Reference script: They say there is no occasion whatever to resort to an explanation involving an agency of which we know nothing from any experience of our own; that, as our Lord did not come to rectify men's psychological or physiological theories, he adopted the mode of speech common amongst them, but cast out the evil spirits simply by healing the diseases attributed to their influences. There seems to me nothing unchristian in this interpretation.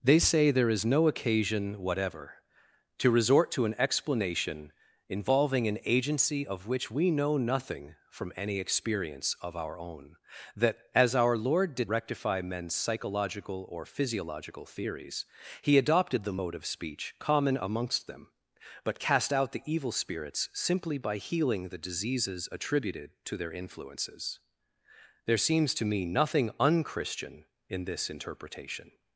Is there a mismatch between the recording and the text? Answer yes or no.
yes